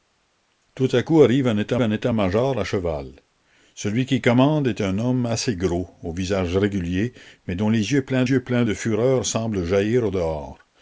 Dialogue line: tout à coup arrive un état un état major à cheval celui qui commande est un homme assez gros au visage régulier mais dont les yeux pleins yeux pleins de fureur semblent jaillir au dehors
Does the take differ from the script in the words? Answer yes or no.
no